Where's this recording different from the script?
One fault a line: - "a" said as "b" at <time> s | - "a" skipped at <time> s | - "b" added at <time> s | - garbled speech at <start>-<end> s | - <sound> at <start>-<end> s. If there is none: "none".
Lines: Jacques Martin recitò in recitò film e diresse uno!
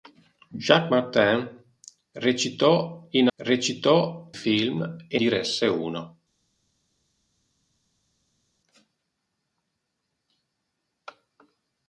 none